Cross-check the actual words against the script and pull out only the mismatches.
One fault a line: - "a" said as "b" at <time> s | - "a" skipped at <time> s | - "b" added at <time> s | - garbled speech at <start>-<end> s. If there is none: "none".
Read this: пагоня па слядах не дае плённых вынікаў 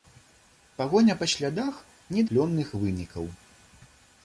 - "дае" skipped at 2.2 s